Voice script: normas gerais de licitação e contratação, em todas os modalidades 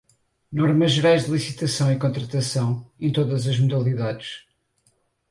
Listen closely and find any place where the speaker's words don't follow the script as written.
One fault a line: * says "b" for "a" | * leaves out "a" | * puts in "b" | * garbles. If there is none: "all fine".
* says "as" for "os"